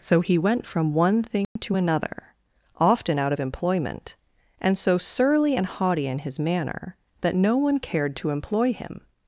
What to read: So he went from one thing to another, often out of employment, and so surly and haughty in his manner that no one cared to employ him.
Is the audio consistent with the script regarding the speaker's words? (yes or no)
yes